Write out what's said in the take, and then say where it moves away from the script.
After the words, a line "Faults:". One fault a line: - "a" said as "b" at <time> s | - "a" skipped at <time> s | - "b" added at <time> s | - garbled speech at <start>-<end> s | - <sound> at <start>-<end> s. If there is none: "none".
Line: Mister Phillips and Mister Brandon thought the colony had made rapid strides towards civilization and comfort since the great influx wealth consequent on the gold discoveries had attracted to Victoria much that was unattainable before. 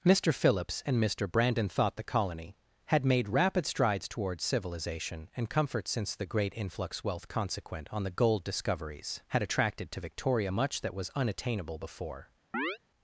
Mister Phillips and Mister Brandon thought the colony had made rapid strides towards civilization and comfort since the great influx wealth consequent on the gold discoveries had attracted to Victoria much that was unattainable before.
Faults:
- chirp at 12.5-12.8 s